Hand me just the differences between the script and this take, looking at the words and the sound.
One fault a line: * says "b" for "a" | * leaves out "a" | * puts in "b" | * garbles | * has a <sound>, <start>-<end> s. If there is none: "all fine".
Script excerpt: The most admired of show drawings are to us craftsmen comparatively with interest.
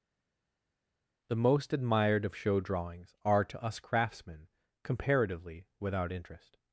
* says "without" for "with"